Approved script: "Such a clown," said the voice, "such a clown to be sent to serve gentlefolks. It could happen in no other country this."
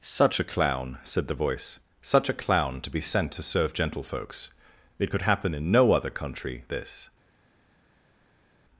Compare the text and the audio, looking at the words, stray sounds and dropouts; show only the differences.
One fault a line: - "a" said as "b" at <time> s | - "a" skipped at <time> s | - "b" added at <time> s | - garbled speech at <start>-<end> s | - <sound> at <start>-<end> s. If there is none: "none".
none